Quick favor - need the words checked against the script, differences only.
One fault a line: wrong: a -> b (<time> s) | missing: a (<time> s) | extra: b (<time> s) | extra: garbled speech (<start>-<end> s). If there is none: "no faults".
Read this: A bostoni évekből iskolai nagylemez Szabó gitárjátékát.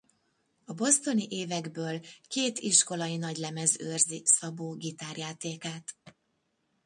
extra: két (2.3 s)
extra: őrzi (3.8 s)